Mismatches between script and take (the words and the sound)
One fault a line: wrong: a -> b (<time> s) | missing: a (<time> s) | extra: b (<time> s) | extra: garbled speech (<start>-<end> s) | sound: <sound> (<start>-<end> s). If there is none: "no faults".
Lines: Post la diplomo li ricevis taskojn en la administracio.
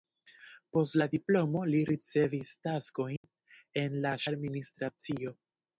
sound: dropout (3.2-3.2 s)